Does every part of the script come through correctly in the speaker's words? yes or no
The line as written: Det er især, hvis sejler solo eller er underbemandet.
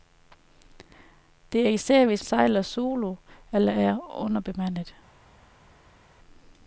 yes